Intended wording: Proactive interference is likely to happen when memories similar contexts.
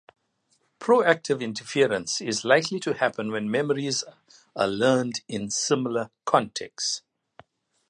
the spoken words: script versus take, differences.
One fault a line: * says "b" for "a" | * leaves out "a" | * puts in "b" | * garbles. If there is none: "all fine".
* puts in "are learned in"